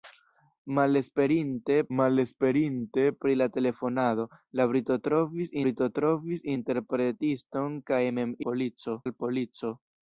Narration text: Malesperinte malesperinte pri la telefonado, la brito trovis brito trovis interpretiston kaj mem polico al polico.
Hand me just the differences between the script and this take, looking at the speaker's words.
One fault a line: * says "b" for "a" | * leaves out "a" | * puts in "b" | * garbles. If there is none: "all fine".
all fine